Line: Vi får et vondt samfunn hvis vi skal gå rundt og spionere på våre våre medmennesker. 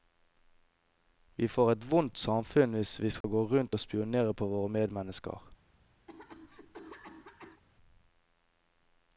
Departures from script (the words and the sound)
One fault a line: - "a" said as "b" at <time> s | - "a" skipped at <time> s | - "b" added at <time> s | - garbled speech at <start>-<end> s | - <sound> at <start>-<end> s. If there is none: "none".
- dropout at 3.2-3.2 s
- "våre" skipped at 4.7 s
- cough at 6.1-7.6 s